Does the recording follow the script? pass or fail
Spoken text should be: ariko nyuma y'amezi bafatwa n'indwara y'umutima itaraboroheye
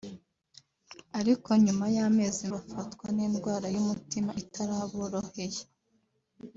pass